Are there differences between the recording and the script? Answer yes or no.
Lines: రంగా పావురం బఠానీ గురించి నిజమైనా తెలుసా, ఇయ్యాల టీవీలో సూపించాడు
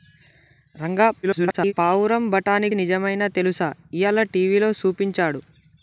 yes